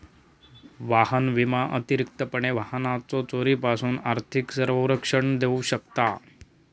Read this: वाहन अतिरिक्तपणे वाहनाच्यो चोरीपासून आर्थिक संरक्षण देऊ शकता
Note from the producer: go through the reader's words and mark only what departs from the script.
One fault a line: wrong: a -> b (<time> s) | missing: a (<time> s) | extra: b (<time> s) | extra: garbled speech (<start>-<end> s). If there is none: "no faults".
extra: विमा (1.3 s)